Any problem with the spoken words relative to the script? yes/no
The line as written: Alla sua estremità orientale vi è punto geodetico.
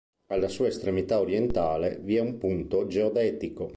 yes